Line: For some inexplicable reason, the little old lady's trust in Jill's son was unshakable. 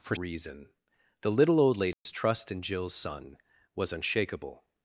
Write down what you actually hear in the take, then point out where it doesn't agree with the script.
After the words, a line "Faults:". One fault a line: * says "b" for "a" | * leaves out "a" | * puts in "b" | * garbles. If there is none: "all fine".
For reason, the little old lady's trust in Jill's son was unshakable.
Faults:
* leaves out "some inexplicable"